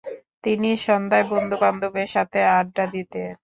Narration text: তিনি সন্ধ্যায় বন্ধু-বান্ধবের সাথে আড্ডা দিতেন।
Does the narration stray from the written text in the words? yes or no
no